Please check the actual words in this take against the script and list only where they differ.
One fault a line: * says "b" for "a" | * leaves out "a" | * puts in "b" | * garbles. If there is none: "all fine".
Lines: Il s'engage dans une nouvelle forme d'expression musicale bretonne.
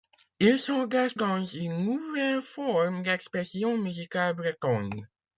all fine